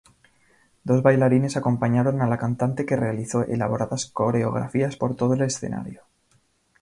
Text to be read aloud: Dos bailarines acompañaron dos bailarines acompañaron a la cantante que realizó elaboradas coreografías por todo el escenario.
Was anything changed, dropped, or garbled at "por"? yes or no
no